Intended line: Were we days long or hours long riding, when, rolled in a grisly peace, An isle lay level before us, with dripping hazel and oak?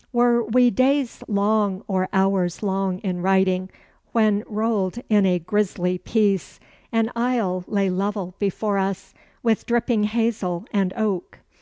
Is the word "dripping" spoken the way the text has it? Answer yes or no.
yes